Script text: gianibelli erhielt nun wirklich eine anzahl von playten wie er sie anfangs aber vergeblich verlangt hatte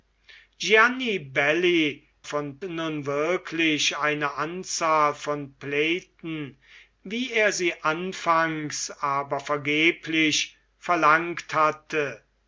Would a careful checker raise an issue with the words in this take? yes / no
yes